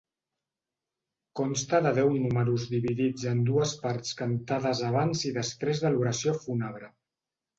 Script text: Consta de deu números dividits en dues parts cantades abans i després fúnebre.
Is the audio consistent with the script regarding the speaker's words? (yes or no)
no